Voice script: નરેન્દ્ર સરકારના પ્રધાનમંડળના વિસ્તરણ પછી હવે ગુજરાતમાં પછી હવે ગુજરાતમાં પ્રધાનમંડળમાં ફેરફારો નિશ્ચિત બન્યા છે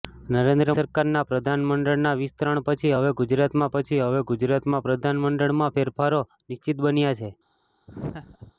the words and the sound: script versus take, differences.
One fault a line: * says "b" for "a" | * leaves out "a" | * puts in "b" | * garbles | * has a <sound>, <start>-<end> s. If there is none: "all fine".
* has a laugh, 7.9-8.5 s